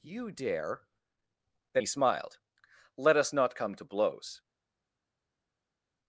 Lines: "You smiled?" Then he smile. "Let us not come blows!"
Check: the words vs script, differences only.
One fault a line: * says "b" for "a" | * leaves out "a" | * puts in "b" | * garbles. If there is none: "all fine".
* says "dare" for "smiled"
* says "smiled" for "smile"
* puts in "to"